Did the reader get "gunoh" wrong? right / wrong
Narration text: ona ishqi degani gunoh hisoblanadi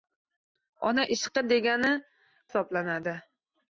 wrong